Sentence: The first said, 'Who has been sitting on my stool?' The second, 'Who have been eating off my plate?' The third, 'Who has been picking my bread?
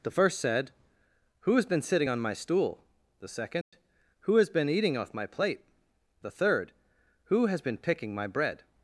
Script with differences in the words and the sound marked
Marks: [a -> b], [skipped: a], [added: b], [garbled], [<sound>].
The first said, 'Who has been sitting on my stool?' The second, [dropout] 'Who [have -> has] been eating off my plate?' The third, 'Who has been picking my bread?